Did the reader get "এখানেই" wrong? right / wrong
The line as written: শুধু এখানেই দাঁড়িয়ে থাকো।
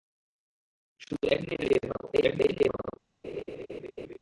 right